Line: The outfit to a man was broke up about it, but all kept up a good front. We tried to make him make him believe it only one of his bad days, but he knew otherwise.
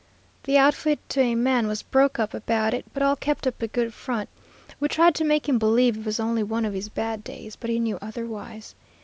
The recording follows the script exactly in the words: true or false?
false